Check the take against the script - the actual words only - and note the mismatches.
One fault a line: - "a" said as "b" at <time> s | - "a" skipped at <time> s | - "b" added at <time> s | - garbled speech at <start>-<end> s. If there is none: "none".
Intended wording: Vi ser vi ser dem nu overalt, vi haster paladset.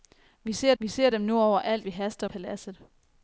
none